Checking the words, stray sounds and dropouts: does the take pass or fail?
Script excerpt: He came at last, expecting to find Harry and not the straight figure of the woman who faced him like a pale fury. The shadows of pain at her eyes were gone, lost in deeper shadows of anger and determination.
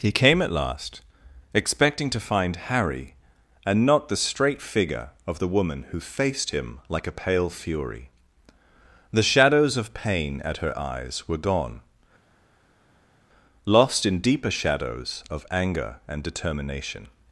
pass